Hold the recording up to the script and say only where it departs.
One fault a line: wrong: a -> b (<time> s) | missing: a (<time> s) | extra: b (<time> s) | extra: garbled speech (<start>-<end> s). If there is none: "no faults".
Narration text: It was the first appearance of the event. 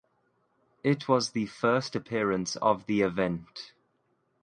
no faults